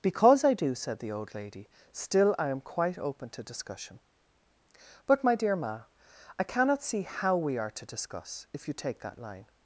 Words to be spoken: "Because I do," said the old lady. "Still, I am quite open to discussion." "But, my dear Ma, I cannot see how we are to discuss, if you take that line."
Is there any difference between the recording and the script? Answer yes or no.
no